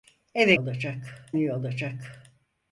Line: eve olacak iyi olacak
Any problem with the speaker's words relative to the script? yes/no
no